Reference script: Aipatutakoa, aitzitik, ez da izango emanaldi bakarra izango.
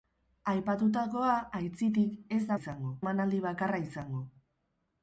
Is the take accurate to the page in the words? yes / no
yes